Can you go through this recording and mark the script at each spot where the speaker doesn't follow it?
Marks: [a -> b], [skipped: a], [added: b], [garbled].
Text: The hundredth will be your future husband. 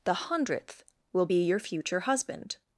The hundredth will be your future husband.